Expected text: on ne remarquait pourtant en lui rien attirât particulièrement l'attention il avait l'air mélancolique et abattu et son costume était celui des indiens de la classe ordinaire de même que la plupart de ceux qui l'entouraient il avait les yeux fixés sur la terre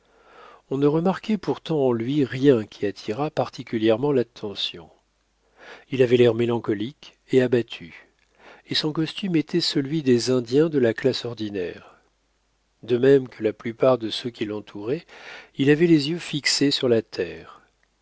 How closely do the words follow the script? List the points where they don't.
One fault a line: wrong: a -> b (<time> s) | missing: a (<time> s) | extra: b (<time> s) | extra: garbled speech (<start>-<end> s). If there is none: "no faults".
extra: qui (2.6 s)